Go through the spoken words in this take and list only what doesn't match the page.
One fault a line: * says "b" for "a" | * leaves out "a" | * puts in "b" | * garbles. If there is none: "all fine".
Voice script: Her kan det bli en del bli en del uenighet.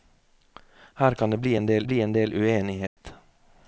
all fine